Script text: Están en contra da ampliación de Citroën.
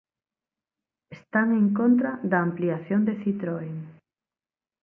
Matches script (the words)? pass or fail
pass